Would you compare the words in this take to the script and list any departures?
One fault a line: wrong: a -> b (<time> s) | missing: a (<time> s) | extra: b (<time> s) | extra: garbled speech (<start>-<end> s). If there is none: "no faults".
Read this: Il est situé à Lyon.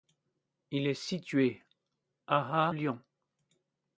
no faults